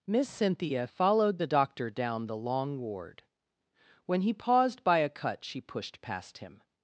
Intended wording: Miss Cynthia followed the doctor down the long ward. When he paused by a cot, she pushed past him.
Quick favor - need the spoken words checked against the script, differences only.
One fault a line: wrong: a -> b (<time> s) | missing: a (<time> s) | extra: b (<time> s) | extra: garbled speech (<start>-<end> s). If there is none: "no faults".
wrong: cot -> cut (5.1 s)